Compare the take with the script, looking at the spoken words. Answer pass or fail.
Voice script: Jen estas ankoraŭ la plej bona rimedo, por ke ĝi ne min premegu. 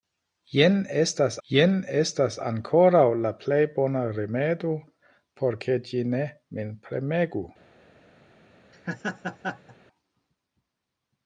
fail